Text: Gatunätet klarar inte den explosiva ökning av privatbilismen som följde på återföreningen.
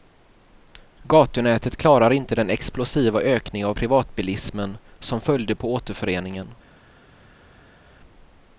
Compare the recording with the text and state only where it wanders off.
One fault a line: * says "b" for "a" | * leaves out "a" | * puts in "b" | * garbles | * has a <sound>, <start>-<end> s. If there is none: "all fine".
all fine